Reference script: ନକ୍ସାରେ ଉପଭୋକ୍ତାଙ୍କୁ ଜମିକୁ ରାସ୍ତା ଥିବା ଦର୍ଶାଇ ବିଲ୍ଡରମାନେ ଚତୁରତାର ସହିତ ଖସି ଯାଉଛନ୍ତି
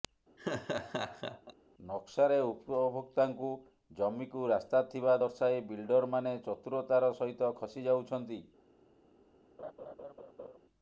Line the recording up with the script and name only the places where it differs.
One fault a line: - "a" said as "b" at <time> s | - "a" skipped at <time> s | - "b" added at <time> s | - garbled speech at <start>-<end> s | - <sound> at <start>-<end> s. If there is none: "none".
- laugh at 0.4-1.5 s
- laugh at 9.6-10.6 s